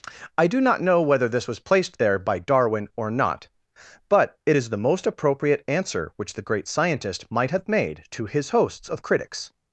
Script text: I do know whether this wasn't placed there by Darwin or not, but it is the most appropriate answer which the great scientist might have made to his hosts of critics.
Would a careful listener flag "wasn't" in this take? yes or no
yes